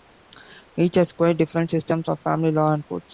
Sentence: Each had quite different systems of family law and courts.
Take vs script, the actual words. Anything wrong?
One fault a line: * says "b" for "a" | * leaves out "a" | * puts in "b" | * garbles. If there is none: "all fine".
* says "has" for "had"